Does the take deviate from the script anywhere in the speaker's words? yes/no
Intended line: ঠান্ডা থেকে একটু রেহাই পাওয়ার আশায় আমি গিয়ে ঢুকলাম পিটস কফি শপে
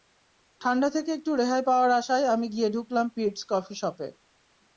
no